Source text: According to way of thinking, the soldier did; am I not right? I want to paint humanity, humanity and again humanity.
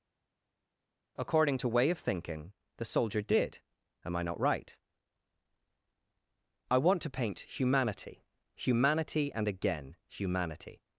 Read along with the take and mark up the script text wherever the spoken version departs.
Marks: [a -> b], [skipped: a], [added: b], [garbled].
According to way of thinking, the soldier did; am I not right? I want to paint humanity, humanity and again humanity.